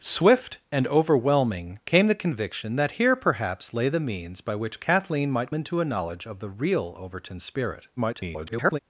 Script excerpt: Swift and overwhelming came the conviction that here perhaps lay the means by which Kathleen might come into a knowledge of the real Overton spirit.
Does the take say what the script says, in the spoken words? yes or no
no